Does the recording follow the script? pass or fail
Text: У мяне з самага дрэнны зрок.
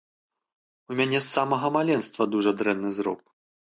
fail